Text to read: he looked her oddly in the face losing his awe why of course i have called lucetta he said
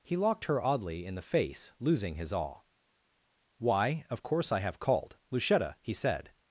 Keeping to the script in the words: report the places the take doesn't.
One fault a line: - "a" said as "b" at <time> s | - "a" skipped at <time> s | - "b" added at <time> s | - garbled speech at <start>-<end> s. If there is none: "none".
- "looked" said as "locked" at 0.2 s